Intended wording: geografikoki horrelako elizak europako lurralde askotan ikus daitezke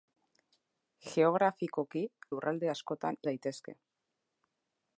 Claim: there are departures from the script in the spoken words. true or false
true